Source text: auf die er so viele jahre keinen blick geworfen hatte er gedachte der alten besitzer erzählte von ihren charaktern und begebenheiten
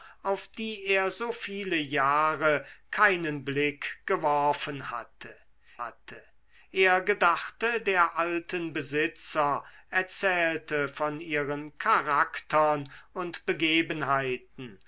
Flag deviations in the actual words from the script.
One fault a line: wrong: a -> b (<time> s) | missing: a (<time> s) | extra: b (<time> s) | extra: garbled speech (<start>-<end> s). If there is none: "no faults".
extra: hatte (5.8 s)